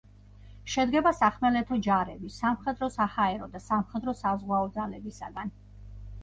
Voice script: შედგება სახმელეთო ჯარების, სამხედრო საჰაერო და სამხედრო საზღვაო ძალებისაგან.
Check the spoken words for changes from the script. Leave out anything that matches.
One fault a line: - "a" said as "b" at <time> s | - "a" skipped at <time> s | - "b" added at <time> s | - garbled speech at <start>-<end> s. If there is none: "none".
none